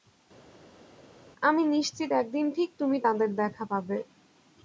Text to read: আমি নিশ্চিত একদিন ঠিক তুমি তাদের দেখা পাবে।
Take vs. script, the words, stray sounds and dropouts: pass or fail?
pass